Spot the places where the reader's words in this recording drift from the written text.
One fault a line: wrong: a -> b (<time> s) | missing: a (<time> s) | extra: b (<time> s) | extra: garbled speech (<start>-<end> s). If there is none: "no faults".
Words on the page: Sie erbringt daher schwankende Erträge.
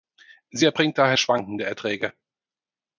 no faults